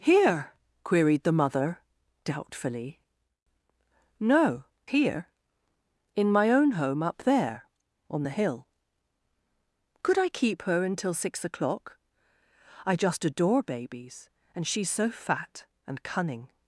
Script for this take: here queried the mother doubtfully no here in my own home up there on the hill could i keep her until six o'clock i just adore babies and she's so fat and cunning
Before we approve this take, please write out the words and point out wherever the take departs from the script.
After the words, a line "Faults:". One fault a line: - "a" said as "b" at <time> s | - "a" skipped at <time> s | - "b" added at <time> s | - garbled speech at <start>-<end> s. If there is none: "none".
here queried the mother doubtfully no here in my own home up there on the hill could i keep her until six o'clock i just adore babies and she's so fat and cunning
Faults:
none